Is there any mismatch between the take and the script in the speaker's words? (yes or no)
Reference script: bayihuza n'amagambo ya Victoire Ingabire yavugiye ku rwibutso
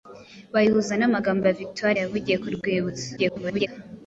yes